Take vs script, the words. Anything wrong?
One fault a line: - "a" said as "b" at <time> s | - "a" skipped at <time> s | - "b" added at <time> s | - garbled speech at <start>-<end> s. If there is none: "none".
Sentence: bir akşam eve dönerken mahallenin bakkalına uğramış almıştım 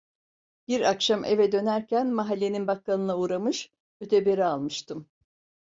- "öteberi" added at 4.0 s